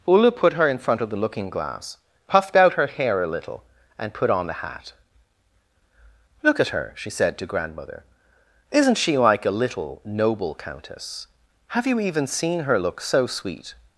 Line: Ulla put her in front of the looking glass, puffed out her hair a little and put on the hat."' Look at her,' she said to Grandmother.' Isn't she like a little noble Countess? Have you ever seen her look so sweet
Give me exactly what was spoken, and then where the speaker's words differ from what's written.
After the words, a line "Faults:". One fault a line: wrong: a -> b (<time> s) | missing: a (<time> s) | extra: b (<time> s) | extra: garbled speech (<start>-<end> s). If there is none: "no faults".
Ulla put her in front of the looking glass, puffed out her hair a little and put on the hat."' Look at her,' she said to Grandmother.' Isn't she like a little noble Countess? Have you even seen her look so sweet
Faults:
wrong: ever -> even (12.0 s)